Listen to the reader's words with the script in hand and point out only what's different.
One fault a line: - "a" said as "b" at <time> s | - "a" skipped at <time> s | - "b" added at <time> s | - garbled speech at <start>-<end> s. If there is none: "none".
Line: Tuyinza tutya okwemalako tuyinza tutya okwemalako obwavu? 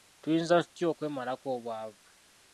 - "tuyinza tutya okwemalako" skipped at 1.5 s